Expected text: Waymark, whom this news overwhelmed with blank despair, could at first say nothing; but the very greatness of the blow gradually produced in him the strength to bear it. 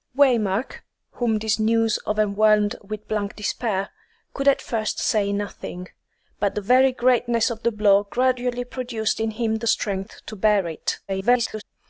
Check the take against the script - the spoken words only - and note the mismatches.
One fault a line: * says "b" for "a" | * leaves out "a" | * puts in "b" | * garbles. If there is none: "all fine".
* garbles